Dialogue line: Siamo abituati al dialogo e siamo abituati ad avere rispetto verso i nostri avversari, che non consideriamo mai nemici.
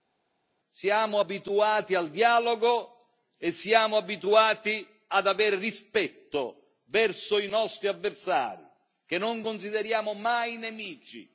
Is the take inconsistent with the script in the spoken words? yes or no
no